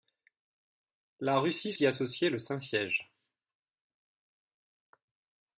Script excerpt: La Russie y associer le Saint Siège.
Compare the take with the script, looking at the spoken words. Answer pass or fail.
pass